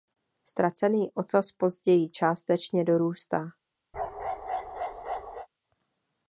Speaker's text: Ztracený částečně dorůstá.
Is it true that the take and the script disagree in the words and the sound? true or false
true